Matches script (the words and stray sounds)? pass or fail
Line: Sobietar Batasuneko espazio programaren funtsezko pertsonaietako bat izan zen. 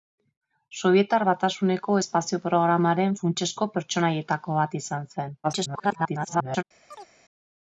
fail